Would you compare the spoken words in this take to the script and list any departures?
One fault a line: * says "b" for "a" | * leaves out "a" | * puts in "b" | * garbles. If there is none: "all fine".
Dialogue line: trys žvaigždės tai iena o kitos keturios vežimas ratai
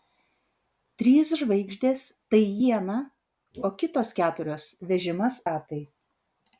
all fine